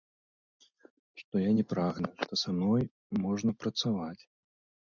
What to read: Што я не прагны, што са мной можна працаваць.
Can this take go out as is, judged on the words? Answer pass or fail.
pass